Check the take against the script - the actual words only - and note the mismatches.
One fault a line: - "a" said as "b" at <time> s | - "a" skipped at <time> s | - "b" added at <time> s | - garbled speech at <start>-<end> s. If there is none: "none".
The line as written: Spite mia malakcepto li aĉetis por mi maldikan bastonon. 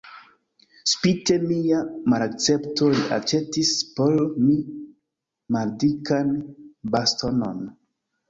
none